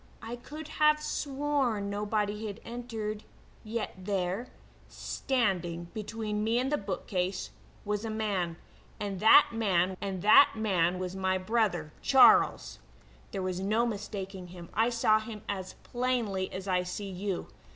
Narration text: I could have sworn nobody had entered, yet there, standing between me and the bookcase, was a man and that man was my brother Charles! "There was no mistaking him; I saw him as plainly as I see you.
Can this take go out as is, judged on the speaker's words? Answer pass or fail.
fail